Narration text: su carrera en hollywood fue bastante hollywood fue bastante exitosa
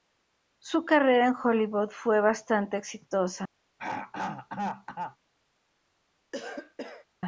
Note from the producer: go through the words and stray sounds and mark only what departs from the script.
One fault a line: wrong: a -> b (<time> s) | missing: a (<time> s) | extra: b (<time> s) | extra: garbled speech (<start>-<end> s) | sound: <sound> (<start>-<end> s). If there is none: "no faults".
missing: hollywood fue bastante (2.8 s)
sound: throat clearing (3.8-5.2 s)
sound: cough (6.3-7.1 s)